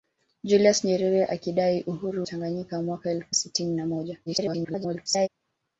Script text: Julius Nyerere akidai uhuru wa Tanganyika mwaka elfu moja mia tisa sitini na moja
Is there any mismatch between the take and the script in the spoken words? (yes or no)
yes